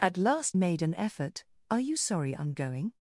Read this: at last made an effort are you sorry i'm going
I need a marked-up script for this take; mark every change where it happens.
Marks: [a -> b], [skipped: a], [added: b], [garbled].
at last made an effort are you sorry i'm going